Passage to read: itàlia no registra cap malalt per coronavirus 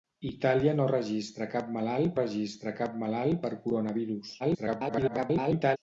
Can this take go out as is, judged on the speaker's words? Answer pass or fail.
fail